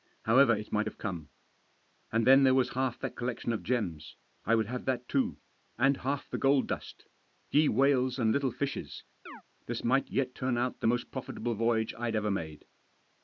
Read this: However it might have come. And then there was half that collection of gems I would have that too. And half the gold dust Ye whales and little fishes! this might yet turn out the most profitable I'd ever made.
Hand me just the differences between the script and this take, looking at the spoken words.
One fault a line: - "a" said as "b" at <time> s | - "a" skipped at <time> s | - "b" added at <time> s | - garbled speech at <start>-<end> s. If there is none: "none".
- "voyage" added at 11.5 s